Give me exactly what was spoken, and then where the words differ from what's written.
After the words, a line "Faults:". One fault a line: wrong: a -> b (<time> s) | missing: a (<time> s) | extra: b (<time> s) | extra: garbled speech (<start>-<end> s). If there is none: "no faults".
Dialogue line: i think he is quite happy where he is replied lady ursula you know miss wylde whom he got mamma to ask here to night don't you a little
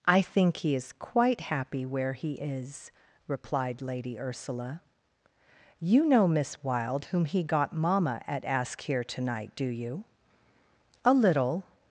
i think he is quite happy where he is replied lady ursula you know miss wylde whom he got mamma at ask here to night do you a little
Faults:
wrong: to -> at (8.3 s)
wrong: don't -> do (9.6 s)